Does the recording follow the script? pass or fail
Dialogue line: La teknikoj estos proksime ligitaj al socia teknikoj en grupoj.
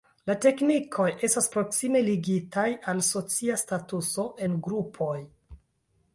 fail